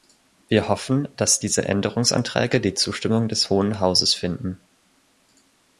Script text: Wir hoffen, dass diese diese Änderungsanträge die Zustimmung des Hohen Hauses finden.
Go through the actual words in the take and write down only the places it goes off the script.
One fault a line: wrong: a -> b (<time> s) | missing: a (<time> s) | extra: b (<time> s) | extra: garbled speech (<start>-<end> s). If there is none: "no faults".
missing: diese (1.7 s)